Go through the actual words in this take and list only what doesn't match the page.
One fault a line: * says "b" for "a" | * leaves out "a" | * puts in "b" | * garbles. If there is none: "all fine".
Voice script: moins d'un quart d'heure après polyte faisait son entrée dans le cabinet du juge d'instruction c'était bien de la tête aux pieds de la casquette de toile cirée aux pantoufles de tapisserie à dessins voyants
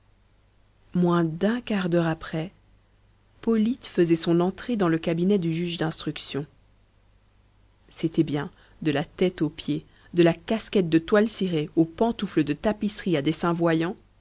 all fine